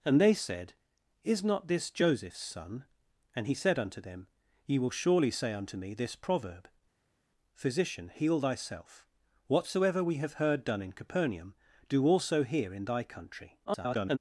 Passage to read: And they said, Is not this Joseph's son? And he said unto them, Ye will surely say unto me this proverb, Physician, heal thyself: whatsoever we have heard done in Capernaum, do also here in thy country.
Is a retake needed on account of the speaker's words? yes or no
yes